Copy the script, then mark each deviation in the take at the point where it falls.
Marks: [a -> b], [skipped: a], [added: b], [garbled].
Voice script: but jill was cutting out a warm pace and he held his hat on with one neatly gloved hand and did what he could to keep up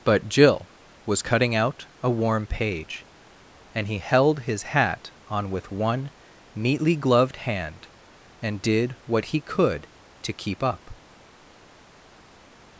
but jill was cutting out a warm [pace -> page] and he held his hat on with one neatly gloved hand and did what he could to keep up